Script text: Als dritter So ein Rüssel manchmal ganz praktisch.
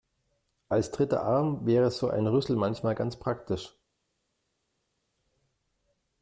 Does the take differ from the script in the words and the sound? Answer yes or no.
yes